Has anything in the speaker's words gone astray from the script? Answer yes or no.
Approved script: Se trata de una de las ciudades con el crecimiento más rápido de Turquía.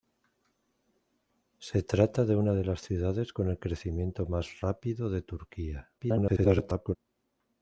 yes